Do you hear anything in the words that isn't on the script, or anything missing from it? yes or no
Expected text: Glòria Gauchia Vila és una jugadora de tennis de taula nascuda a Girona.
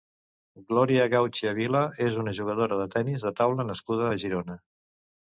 no